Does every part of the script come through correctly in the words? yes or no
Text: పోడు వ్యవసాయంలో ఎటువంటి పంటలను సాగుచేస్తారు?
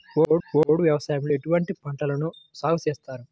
no